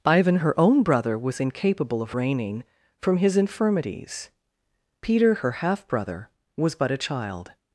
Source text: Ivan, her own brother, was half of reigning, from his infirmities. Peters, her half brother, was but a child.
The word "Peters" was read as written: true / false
false